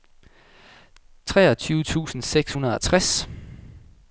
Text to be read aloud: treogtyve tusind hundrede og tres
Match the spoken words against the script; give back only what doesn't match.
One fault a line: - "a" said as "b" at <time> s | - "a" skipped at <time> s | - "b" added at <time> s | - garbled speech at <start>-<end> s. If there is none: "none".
- "seks" added at 2.2 s